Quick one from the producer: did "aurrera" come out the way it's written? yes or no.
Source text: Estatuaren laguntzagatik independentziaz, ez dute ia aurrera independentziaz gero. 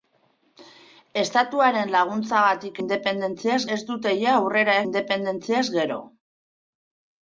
yes